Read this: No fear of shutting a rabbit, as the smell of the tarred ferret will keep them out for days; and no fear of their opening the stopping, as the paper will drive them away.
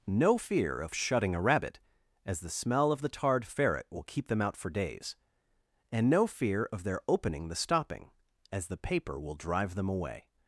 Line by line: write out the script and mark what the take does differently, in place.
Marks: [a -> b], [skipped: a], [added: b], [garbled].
No fear of shutting a rabbit, as the smell of the tarred ferret will keep them out for days; and no fear of their opening the stopping, as the paper will drive them away.